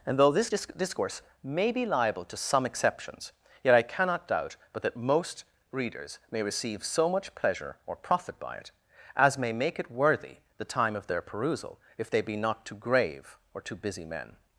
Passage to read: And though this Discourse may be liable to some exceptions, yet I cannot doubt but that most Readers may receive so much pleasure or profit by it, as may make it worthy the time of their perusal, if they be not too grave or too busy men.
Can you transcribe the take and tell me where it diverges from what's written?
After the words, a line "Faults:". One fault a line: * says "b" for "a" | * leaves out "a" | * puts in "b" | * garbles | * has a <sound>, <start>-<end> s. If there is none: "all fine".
And though this disc Discourse may be liable to some exceptions, yet I cannot doubt but that most Readers may receive so much pleasure or profit by it, as may make it worthy the time of their perusal, if they be not too grave or too busy men.
Faults:
* puts in "disc"